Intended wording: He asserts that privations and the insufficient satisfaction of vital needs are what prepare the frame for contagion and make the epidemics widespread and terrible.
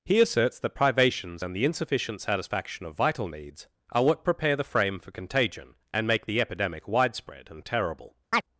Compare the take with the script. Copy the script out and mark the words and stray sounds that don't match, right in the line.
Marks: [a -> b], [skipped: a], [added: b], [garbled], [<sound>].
He asserts that privations and the insufficient satisfaction of vital needs are what prepare the frame for contagion and make the [epidemics -> epidemic] widespread and terrible. [chirp]